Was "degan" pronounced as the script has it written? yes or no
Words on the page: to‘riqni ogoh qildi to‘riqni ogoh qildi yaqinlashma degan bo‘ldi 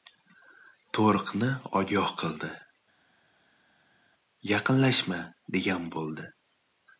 yes